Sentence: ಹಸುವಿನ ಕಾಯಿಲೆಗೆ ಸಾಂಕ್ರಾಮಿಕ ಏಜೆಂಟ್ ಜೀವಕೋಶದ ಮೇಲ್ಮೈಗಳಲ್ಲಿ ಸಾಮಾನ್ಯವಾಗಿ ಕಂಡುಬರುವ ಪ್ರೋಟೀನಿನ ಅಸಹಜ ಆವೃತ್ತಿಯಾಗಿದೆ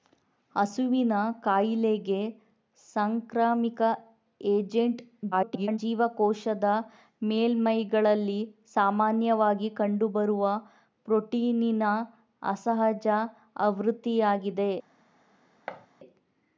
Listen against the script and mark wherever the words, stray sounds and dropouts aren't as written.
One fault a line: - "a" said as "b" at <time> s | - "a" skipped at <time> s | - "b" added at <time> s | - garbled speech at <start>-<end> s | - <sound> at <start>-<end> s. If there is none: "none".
- garbled speech at 5.3-5.8 s
- thud at 15.7-15.9 s